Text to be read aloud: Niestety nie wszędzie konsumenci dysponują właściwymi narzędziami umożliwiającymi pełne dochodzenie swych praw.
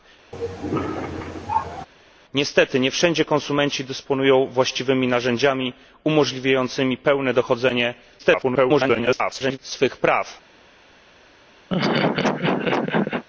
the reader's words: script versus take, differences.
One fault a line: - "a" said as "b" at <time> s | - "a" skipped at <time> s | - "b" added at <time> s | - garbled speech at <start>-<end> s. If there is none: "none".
- garbled speech at 8.2-9.6 s